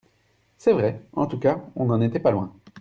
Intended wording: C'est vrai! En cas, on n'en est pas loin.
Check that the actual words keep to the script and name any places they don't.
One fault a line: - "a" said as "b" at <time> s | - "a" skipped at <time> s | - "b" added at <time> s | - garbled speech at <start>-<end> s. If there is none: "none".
- "tout" added at 1.3 s
- "est" said as "était" at 2.0 s